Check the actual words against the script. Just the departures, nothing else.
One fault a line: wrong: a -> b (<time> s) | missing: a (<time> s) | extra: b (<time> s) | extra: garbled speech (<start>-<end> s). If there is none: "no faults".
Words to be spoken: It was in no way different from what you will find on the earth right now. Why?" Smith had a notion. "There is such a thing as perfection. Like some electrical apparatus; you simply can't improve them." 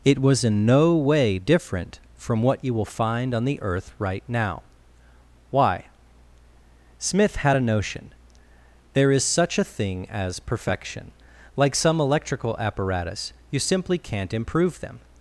no faults